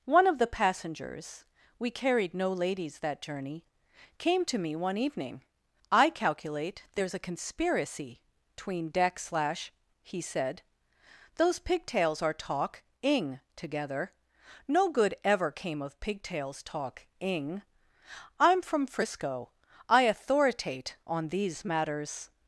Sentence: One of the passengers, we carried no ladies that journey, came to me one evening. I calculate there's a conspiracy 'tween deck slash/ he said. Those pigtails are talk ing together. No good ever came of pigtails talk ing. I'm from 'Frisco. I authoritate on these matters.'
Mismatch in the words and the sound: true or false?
false